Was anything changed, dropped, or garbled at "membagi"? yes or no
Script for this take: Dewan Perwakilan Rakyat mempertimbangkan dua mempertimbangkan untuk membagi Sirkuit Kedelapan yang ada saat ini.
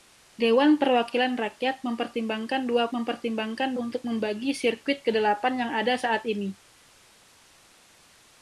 no